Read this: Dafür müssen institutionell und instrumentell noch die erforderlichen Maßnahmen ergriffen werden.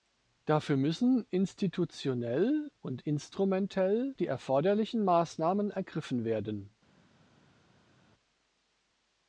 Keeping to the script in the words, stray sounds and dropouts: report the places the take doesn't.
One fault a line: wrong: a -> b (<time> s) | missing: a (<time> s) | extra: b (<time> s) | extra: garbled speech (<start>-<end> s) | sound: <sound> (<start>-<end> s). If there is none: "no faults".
missing: noch (4.2 s)